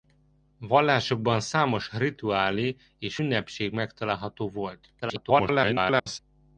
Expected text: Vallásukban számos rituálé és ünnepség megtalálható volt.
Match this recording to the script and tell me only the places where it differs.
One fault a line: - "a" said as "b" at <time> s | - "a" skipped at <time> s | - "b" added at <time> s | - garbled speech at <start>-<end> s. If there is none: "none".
- garbled speech at 5.0-6.2 s